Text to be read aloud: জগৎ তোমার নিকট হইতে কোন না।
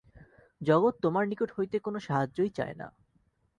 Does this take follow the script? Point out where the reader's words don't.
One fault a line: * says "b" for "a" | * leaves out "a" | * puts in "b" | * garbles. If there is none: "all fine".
* puts in "সাহায্যই চায়"